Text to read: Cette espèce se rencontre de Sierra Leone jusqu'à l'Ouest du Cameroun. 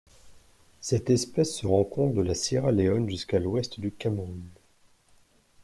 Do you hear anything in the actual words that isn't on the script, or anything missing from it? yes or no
yes